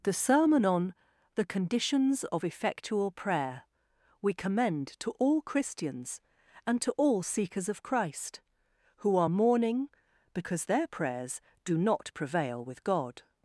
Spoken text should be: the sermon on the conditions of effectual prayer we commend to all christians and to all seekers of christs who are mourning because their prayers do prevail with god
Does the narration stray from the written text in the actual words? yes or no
yes